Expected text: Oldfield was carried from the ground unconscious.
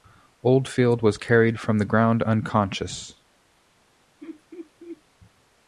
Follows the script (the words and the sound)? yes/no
no